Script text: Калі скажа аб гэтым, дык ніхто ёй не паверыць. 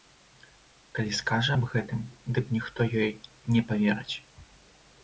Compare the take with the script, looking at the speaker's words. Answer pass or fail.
pass